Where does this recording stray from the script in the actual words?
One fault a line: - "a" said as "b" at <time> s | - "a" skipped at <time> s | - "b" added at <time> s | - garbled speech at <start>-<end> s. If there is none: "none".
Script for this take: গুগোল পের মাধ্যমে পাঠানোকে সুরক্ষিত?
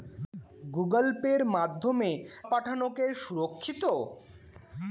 none